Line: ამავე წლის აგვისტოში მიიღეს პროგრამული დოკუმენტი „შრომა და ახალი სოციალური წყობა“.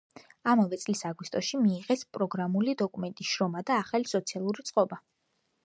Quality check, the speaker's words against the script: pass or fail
pass